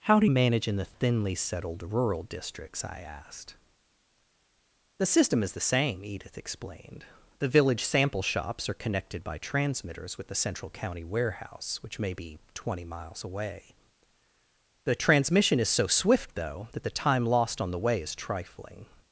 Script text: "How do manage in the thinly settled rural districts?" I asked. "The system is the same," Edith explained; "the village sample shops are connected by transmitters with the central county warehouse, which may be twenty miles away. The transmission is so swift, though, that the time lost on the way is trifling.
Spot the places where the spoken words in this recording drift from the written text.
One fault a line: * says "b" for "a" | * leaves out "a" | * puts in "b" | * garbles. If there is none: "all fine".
all fine